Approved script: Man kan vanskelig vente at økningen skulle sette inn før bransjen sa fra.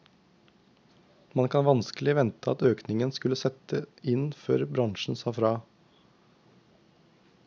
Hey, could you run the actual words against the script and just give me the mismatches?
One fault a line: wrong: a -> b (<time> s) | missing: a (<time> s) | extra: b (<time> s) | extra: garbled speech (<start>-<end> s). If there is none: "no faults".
no faults